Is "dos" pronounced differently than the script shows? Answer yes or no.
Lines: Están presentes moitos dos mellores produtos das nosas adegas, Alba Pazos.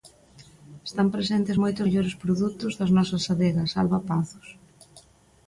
yes